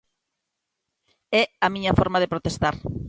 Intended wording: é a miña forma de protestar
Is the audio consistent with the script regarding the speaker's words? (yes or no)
yes